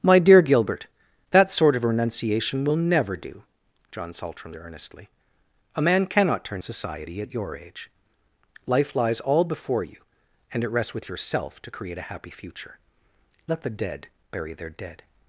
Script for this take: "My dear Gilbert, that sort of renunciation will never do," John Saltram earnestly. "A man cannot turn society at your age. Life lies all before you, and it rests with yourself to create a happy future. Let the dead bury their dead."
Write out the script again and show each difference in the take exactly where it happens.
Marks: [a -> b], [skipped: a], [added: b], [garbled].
"My dear Gilbert, that sort of renunciation will never do," John Saltram earnestly. "A man cannot turn society at your age. Life lies all before you, and it rests with yourself to create a happy future. Let the dead bury their dead."